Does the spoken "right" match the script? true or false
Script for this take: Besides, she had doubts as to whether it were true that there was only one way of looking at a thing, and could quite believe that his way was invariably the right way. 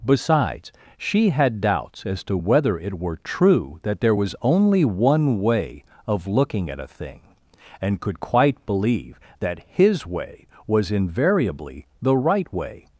true